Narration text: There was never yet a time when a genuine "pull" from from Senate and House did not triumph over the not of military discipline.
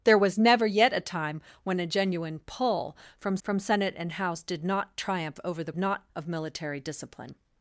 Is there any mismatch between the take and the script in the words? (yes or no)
no